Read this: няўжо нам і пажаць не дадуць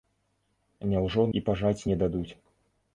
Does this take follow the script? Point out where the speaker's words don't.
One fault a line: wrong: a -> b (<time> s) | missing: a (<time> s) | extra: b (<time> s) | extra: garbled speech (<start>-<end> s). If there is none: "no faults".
missing: нам (1.2 s)